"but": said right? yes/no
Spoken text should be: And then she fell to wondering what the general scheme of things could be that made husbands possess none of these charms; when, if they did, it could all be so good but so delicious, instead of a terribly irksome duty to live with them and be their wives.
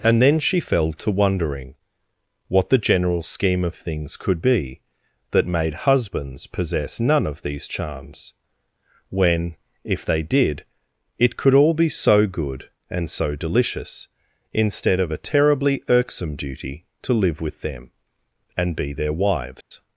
no